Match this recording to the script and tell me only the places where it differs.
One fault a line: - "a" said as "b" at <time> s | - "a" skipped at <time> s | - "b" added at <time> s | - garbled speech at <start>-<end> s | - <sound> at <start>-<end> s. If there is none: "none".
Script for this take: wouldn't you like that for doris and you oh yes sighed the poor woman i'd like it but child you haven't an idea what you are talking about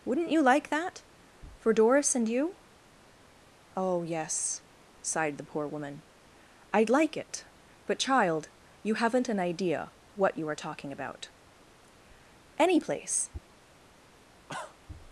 - "any place" added at 12.6 s
- cough at 14.5-14.8 s